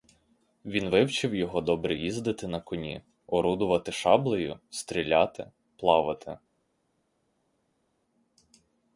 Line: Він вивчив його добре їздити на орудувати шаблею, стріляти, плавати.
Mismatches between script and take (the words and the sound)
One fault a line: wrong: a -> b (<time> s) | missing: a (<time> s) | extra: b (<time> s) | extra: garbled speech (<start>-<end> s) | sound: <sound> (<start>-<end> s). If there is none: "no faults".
extra: коні (2.6 s)